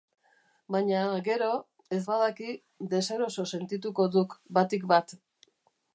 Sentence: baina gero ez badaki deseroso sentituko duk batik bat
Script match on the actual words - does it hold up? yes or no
yes